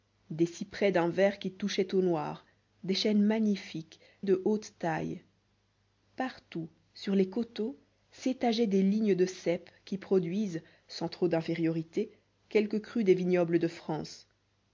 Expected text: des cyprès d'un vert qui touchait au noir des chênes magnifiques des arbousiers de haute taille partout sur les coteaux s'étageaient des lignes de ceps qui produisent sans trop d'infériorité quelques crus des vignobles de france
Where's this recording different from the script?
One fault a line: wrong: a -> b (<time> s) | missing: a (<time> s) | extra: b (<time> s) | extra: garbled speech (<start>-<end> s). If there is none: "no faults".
missing: des arbousiers (4.0 s)